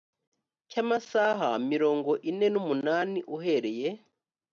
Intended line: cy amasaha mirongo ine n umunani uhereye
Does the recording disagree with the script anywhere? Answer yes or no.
no